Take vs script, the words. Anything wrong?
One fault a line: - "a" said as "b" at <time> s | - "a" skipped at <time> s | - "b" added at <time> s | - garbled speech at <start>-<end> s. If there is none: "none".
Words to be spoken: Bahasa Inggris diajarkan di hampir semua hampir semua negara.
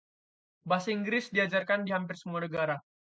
- "hampir semua" skipped at 2.4 s